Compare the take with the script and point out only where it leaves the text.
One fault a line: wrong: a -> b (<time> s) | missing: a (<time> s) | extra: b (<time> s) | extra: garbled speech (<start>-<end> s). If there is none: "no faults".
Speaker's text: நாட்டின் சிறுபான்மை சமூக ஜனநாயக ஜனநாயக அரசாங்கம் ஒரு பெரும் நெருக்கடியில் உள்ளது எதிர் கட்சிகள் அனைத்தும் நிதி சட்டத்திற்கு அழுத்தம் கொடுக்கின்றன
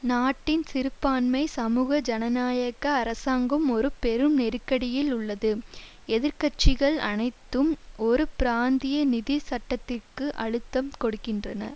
missing: ஜனநாயக (2.8 s)
extra: ஒரு பிராந்திய (8.0 s)